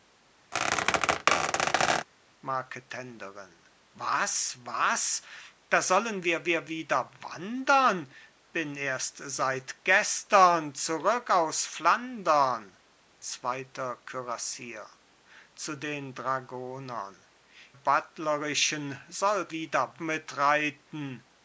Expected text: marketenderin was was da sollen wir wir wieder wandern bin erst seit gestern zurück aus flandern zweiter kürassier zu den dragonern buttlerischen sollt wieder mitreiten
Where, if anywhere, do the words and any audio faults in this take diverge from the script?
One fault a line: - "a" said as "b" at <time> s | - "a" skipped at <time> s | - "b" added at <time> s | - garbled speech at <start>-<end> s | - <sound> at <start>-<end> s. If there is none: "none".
- squeak at 0.5-2.1 s